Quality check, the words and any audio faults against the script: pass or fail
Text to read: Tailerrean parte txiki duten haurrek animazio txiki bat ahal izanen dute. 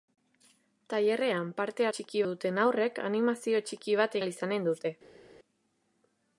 pass